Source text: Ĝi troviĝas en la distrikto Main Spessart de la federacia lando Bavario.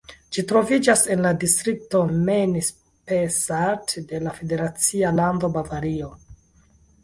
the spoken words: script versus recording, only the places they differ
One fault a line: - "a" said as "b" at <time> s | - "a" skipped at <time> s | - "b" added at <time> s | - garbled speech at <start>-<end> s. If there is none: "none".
none